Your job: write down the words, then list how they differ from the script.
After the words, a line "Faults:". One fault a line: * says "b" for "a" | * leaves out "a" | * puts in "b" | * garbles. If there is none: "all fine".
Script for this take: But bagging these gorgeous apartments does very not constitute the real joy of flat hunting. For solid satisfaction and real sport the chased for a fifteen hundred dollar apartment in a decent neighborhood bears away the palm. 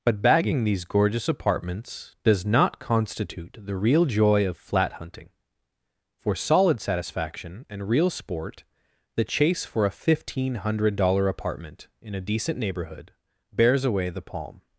But bagging these gorgeous apartments does not constitute the real joy of flat hunting. For solid satisfaction and real sport the chase for a fifteen hundred dollar apartment in a decent neighborhood bears away the palm.
Faults:
* leaves out "very"
* says "chase" for "chased"